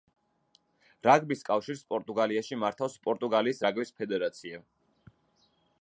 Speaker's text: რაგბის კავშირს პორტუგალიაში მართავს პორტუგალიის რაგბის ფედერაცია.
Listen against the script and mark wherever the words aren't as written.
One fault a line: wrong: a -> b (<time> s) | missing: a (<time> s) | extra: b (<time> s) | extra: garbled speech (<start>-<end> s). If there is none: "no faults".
no faults